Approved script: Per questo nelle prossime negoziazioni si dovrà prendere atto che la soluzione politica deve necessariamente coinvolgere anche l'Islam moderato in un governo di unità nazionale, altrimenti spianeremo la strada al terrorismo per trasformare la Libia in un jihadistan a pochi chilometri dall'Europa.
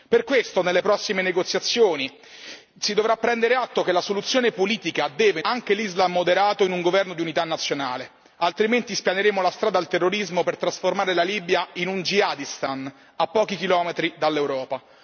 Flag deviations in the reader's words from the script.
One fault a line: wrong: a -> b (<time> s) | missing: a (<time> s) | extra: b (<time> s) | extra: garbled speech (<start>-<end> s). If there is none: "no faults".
missing: necessariamente coinvolgere (5.4 s)